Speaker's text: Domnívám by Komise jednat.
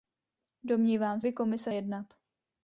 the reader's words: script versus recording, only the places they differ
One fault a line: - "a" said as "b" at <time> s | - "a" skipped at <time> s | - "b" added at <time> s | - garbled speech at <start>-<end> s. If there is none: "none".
none